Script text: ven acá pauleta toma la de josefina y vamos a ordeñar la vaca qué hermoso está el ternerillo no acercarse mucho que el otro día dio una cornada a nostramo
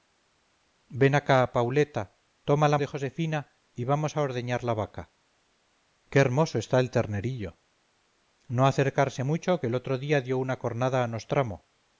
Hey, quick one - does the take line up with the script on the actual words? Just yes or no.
yes